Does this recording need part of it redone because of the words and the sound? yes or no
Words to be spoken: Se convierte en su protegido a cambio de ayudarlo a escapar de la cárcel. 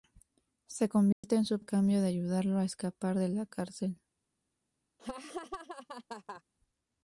yes